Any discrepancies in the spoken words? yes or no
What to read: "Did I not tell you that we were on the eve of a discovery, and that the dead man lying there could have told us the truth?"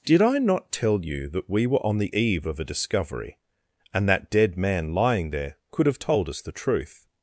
yes